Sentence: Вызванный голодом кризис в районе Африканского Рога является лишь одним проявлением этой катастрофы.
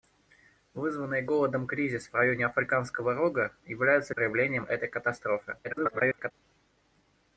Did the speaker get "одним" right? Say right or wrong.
wrong